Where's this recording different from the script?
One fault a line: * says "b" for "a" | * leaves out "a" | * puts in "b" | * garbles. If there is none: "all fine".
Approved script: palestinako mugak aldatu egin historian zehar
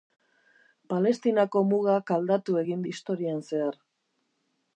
all fine